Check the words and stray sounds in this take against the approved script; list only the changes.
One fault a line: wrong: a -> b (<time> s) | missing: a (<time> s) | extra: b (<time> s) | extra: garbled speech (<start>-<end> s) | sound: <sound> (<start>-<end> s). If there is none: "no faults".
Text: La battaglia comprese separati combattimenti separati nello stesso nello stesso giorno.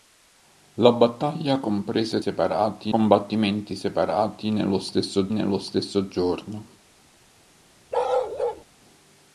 sound: bark (7.9-8.6 s)